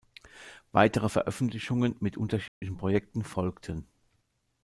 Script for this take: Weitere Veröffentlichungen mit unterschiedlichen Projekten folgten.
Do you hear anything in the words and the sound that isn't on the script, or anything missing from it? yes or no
yes